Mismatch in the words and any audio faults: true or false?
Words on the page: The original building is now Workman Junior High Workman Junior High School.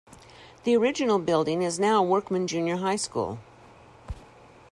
true